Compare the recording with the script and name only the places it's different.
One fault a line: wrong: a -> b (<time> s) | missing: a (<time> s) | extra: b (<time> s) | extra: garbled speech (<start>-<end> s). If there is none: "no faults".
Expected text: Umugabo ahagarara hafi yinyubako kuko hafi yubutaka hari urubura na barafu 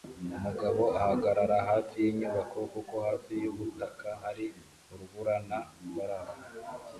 no faults